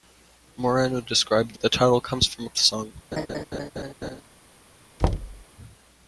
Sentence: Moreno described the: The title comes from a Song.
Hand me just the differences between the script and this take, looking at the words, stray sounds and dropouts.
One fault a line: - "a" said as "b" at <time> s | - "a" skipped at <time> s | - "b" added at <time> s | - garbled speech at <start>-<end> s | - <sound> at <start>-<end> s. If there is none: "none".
- laugh at 3.1-4.2 s
- thud at 5.0-5.4 s